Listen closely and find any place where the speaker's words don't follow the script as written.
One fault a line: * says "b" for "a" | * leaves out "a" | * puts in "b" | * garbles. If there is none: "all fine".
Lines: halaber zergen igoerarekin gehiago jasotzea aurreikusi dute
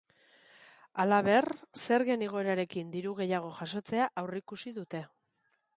* puts in "diru"